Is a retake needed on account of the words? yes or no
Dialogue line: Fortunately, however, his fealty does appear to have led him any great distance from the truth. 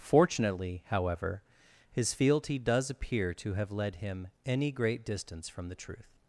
no